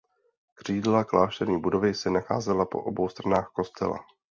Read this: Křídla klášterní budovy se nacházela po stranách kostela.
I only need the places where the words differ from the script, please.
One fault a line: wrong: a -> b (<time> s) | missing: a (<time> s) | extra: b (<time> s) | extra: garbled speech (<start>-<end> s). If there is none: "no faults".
extra: obou (2.8 s)